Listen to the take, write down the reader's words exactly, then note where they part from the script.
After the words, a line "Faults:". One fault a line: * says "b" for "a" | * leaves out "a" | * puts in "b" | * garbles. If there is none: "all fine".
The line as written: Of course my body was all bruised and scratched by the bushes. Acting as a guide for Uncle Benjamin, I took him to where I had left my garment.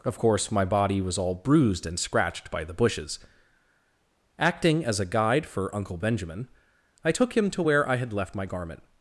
Of course my body was all bruised and scratched by the bushes. Acting as a guide for Uncle Benjamin, I took him to where I had left my garment.
Faults:
all fine